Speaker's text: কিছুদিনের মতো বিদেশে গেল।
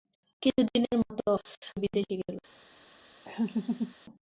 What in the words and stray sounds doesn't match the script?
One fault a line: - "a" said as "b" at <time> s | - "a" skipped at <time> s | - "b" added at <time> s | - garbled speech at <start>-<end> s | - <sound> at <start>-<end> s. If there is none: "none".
- laugh at 3.2-3.9 s